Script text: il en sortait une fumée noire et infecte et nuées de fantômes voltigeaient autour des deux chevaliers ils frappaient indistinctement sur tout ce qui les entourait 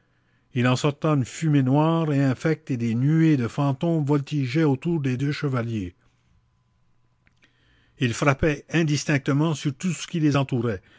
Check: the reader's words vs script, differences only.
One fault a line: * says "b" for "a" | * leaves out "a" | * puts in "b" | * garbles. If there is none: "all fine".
* puts in "des"